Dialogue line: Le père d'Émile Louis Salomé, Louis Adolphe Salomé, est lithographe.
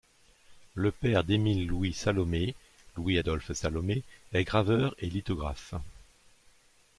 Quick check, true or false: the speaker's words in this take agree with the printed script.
false